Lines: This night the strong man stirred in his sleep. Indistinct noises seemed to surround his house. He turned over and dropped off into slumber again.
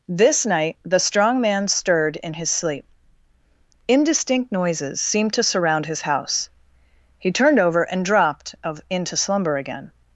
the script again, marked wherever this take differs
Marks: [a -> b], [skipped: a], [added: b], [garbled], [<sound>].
This night the strong man stirred in his sleep. Indistinct noises seemed to surround his house. He turned over and dropped [off -> of] into slumber again.